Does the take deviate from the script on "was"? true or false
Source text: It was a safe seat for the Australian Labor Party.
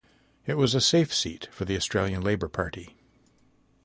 false